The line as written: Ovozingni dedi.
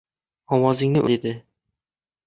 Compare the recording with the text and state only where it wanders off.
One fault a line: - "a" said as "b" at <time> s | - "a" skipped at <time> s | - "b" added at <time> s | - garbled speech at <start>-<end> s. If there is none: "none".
none